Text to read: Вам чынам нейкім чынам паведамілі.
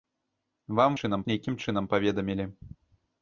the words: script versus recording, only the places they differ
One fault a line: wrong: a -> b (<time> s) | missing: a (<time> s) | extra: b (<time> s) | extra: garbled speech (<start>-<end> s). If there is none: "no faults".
no faults